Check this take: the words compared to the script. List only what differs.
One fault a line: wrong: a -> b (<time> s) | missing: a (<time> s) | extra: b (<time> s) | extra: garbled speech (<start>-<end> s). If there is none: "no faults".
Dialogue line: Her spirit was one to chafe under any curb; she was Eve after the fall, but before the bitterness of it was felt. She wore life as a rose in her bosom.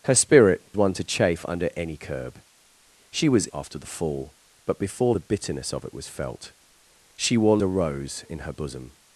missing: was (0.6 s)
missing: Eve (3.5 s)
missing: life as (7.6 s)